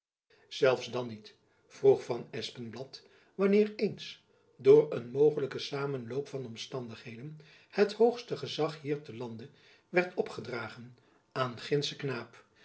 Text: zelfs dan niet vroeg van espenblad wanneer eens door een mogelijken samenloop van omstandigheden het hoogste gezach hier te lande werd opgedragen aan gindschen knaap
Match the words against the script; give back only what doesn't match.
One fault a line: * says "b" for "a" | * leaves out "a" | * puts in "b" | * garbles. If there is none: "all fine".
all fine